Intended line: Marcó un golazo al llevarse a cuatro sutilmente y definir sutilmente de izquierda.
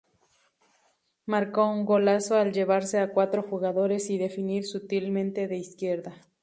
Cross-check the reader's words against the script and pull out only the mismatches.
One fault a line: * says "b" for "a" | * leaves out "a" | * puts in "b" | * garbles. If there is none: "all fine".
* says "jugadores" for "sutilmente"